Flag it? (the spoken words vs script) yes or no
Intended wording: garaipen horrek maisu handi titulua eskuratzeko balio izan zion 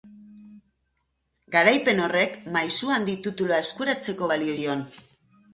yes